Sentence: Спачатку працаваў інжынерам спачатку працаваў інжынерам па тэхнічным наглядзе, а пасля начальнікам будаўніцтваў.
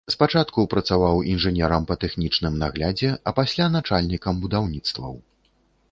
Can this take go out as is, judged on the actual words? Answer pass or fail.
fail